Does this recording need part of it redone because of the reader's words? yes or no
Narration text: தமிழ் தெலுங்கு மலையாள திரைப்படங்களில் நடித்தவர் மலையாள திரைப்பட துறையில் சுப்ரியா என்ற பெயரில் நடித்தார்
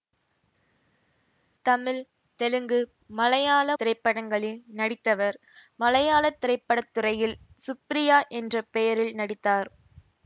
no